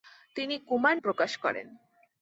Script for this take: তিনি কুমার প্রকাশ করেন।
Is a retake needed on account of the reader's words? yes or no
no